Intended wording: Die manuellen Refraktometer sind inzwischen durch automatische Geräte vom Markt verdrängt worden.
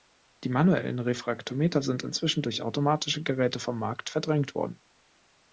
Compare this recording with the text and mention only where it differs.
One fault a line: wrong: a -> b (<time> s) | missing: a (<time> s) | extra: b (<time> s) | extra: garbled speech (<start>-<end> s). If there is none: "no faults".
no faults